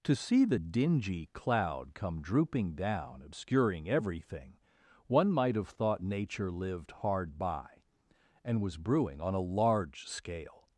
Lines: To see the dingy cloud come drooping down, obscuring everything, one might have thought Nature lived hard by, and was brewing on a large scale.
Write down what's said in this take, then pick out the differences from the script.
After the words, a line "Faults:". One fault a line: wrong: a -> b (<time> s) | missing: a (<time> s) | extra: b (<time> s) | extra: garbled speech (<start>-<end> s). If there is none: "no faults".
To see the dingy cloud come drooping down, obscuring everything, one might have thought Nature lived hard by, and was brewing on a large scale.
Faults:
no faults